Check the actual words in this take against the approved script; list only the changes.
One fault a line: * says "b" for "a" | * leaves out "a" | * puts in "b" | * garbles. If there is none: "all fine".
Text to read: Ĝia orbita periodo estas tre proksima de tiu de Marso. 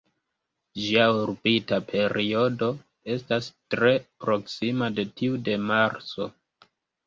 all fine